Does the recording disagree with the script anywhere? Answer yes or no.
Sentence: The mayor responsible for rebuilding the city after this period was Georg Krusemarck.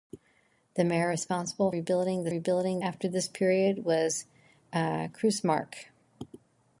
yes